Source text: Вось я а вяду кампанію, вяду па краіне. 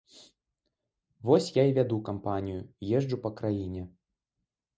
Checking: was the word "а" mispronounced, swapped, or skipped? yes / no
yes